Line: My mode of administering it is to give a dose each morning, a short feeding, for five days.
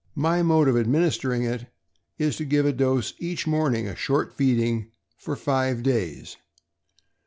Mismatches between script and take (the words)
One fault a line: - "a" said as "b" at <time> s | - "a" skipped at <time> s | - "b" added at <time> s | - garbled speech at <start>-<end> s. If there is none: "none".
none